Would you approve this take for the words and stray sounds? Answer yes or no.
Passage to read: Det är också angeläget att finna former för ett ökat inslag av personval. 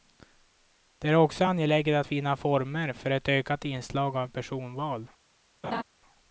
no